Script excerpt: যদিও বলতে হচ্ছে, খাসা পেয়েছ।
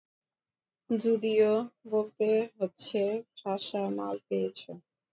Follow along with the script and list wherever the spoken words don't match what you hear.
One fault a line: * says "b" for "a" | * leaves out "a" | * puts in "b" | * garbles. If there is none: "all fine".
* puts in "মাল"